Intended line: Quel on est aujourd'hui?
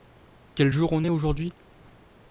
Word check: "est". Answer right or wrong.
right